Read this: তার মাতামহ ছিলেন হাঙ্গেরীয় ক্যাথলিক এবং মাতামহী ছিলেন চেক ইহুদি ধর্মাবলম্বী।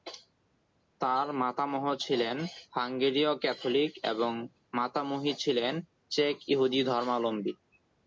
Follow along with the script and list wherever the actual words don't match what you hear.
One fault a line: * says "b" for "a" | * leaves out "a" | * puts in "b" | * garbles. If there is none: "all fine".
all fine